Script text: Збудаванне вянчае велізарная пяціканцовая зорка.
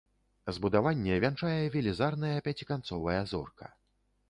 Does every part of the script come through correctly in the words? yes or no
yes